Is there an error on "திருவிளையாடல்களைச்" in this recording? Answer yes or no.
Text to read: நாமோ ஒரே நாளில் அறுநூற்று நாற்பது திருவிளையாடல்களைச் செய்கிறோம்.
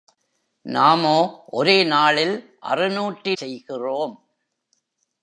yes